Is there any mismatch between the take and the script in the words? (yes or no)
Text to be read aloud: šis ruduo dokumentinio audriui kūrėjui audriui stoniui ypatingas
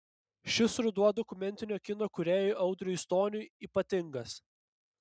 yes